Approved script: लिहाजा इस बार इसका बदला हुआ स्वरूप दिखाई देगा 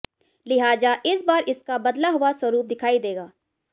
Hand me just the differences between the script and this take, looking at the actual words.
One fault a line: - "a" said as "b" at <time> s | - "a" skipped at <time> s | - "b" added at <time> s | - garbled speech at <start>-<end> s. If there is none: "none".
none